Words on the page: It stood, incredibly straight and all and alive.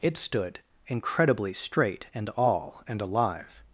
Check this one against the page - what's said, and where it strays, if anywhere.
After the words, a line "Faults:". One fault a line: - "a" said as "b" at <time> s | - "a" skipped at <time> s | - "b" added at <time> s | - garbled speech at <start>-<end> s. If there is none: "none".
It stood, incredibly straight and all and alive.
Faults:
none